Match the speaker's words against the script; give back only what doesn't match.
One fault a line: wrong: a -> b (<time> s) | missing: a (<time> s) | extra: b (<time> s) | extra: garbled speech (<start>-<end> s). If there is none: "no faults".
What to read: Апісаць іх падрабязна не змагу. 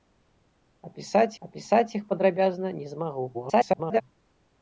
extra: апісаць (1.5 s)
extra: garbled speech (3.3-4.0 s)